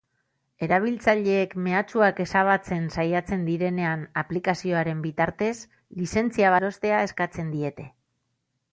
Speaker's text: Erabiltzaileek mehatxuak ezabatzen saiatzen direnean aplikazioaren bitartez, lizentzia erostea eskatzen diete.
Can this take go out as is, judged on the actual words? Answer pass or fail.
pass